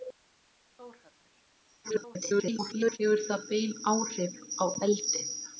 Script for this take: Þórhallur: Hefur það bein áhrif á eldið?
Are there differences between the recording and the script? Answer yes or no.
yes